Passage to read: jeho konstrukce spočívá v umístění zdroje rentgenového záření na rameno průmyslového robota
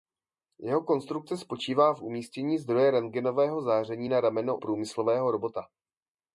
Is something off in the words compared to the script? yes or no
no